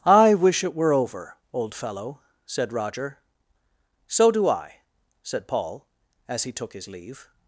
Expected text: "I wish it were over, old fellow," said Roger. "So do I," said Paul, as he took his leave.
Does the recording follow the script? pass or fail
pass